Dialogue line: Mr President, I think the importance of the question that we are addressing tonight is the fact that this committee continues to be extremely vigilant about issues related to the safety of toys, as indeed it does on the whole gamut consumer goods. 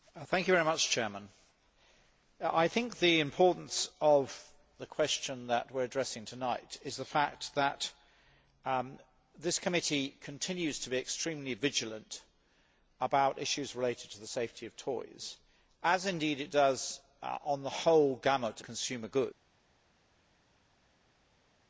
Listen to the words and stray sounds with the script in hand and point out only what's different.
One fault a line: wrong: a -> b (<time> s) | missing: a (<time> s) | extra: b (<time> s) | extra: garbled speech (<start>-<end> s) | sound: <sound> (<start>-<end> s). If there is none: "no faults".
no faults